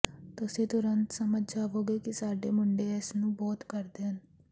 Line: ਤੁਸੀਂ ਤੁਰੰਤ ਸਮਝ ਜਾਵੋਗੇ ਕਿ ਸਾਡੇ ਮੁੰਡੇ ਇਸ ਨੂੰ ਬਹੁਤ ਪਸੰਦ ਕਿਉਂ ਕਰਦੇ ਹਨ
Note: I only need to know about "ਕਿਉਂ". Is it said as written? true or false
false